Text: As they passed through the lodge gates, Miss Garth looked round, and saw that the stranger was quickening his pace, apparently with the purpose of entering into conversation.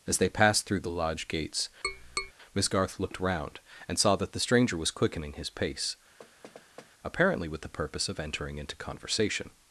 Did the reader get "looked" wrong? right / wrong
right